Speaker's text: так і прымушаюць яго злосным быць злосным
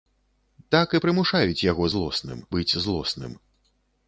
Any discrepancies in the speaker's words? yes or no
no